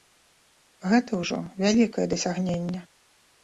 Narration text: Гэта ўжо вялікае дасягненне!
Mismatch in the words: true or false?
false